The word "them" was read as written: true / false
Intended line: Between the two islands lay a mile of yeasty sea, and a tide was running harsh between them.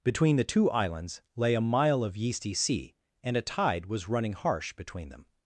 true